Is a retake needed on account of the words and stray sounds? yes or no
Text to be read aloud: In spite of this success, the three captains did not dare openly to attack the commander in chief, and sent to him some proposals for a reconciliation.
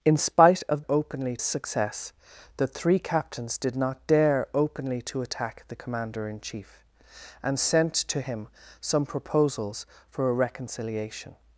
yes